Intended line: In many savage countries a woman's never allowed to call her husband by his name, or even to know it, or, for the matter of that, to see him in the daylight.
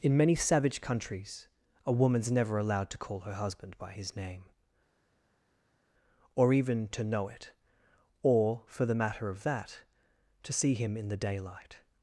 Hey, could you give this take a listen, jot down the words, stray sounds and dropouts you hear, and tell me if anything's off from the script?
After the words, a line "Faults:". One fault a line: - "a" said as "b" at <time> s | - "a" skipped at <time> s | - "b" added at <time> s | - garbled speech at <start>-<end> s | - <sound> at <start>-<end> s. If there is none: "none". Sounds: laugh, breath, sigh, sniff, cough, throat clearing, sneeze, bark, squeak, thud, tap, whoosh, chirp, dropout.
In many savage countries a woman's never allowed to call her husband by his name, or even to know it, or, for the matter of that, to see him in the daylight.
Faults:
none